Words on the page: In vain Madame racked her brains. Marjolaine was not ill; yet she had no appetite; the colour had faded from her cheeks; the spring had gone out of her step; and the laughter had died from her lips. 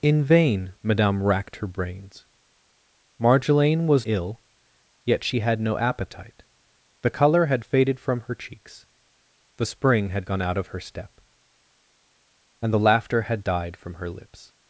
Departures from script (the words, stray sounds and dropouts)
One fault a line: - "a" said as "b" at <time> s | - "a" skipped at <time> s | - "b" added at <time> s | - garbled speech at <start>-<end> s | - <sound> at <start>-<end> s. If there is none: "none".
- "not" skipped at 4.1 s